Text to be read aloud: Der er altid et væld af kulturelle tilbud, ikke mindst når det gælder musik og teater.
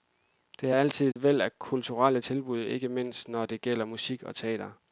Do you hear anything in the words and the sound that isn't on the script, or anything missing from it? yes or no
yes